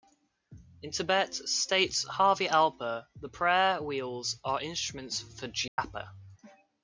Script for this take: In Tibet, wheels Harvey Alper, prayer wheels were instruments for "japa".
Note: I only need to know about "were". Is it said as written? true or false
false